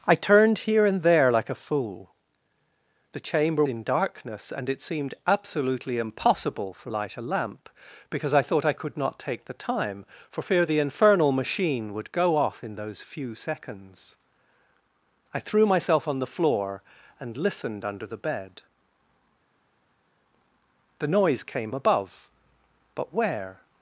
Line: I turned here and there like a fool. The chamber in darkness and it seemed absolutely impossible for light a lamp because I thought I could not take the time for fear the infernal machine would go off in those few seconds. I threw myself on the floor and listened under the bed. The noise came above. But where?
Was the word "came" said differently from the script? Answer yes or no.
no